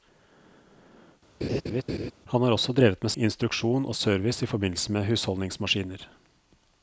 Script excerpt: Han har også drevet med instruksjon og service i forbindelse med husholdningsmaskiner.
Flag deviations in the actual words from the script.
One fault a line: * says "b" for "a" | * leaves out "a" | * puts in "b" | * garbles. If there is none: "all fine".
all fine